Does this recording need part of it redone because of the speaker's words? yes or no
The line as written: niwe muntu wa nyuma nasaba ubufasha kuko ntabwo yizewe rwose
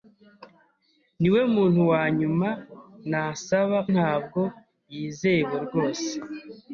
yes